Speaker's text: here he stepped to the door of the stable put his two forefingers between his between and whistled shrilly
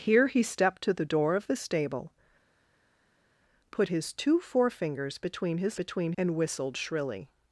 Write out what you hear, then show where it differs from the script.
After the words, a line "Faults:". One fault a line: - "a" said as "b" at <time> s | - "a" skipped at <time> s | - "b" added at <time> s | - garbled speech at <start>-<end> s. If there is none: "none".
here he stepped to the door of the stable put his two forefingers between his between and whistled shrilly
Faults:
none